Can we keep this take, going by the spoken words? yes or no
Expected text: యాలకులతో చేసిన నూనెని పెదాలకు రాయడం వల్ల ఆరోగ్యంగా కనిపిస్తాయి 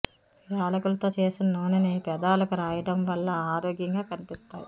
yes